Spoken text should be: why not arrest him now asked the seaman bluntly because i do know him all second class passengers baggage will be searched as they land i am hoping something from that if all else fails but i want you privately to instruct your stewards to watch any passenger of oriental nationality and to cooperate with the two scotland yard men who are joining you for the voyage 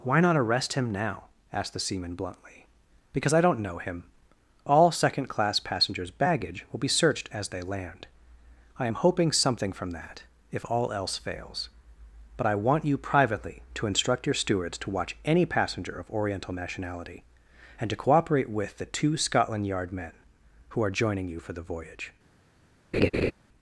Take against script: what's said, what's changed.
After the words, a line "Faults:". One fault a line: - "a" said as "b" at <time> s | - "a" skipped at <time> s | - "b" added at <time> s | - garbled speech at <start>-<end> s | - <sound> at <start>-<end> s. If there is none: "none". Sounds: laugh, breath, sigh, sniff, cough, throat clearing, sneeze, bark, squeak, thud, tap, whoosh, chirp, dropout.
why not arrest him now asked the seaman bluntly because i don't know him all second class passengers baggage will be searched as they land i am hoping something from that if all else fails but i want you privately to instruct your stewards to watch any passenger of oriental nationality and to cooperate with the two scotland yard men who are joining you for the voyage
Faults:
- "do" said as "don't" at 3.4 s
- laugh at 22.9-23.3 s